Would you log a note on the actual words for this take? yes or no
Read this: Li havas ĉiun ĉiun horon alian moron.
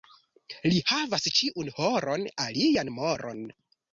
yes